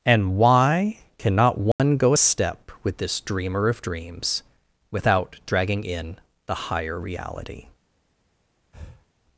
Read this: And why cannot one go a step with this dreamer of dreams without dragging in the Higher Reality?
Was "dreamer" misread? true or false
false